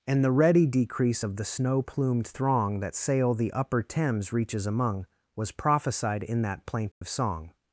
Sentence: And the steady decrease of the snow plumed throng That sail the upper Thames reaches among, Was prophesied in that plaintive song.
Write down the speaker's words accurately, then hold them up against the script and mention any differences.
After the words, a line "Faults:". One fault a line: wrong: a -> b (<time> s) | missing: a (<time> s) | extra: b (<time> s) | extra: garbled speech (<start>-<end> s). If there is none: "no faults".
And the ready decrease of the snow plumed throng That sail the upper Thames reaches among, Was prophesied in that plaintive song.
Faults:
wrong: steady -> ready (0.3 s)